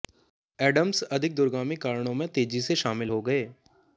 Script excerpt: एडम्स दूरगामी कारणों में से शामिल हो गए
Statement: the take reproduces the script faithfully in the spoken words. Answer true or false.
false